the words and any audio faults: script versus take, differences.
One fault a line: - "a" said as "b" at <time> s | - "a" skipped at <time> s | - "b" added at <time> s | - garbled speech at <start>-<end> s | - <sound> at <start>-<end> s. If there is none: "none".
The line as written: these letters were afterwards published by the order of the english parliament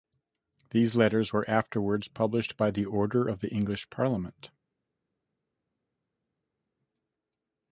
none